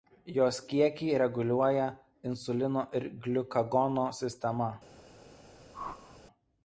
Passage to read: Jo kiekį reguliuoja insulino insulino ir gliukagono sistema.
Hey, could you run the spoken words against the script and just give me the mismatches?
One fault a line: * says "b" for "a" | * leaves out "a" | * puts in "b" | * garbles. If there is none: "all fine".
* says "Jos" for "Jo"
* leaves out "insulino"